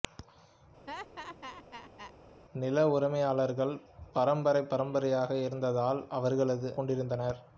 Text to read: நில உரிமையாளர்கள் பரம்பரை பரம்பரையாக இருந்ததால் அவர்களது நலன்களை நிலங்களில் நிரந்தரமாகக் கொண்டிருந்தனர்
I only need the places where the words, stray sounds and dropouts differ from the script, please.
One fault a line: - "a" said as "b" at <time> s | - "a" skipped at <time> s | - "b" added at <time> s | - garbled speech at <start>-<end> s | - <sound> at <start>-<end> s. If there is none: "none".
- laugh at 0.9-2.1 s
- "நலன்களை நிலங்களில் நிரந்தரமாகக்" skipped at 6.7 s